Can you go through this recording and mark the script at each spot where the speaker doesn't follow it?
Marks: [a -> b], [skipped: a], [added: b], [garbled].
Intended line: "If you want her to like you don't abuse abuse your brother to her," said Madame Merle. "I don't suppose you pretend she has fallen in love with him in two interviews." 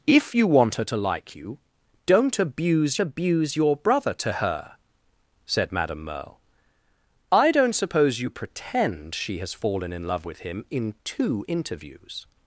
"If you want her to like you don't abuse abuse your brother to her," said Madame Merle. "I don't suppose you pretend she has fallen in love with him in two interviews."